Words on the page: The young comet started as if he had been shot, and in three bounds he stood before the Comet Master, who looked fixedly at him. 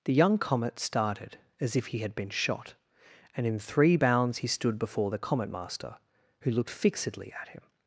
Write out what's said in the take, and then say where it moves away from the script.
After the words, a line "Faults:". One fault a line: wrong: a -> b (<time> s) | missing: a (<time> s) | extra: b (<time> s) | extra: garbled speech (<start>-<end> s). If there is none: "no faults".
The young comet started as if he had been shot, and in three bounds he stood before the Comet Master, who looked fixedly at him.
Faults:
no faults